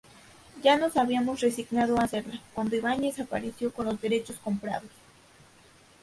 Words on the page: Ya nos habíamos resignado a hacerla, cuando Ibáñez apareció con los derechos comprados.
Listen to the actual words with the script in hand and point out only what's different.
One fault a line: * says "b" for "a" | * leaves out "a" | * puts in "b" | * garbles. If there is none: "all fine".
all fine